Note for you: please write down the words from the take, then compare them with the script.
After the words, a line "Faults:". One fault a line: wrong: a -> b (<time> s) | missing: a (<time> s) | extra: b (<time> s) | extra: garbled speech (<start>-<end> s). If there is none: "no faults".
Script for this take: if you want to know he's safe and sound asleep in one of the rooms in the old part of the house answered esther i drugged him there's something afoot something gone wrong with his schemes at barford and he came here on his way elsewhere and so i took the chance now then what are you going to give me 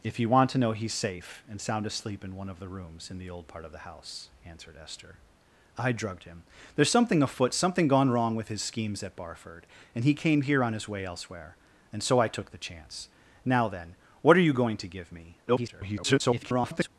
if you want to know he's safe and sound asleep in one of the rooms in the old part of the house answered esther i drugged him there's something afoot something gone wrong with his schemes at barford and he came here on his way elsewhere and so i took the chance now then what are you going to give me [garbled]
Faults:
extra: garbled speech (15.5-16.9 s)